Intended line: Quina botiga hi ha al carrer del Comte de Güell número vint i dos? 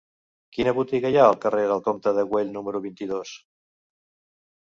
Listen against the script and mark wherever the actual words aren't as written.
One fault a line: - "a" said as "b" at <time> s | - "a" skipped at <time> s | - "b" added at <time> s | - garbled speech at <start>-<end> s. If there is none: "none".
none